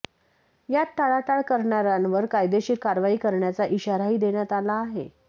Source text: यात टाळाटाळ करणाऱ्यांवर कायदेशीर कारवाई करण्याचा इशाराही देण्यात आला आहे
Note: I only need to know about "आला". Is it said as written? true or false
true